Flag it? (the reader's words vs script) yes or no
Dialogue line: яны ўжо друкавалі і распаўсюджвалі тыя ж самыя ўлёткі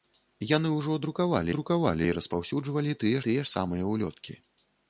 yes